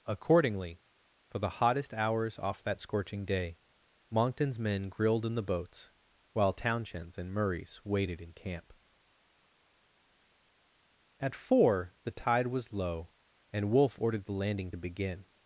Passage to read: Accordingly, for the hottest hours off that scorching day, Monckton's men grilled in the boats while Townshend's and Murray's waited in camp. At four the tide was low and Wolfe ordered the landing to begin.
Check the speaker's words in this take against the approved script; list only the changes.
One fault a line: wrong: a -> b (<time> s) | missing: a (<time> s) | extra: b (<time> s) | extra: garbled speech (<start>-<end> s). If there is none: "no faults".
no faults